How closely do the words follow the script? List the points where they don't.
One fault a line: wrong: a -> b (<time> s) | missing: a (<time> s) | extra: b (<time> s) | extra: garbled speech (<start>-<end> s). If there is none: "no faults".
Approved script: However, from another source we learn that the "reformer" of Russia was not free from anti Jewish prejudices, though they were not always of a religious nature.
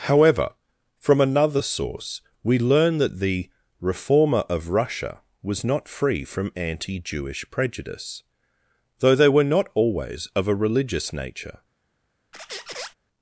wrong: prejudices -> prejudice (7.5 s)